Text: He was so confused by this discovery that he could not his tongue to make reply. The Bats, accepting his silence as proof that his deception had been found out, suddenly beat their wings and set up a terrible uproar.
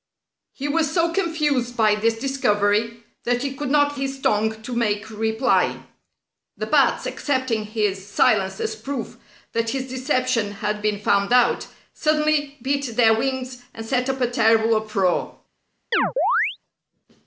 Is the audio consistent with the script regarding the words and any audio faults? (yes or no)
no